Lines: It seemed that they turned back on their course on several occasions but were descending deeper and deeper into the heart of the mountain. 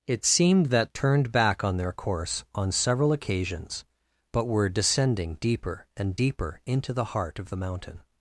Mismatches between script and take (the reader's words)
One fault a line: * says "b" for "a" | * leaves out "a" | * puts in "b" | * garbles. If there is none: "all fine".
* leaves out "they"